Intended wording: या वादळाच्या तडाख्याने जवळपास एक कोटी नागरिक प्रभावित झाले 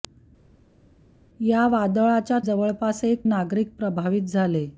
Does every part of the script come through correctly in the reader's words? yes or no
no